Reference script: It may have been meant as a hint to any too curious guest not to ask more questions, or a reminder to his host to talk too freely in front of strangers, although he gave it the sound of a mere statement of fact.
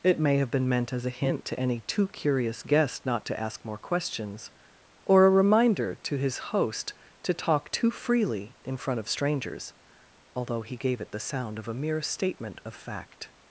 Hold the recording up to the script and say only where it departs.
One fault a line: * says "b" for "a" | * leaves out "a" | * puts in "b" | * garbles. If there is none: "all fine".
all fine